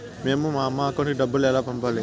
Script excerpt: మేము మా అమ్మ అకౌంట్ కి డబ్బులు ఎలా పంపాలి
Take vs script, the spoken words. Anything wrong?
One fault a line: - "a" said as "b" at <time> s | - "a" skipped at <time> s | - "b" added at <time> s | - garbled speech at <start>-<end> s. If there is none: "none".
none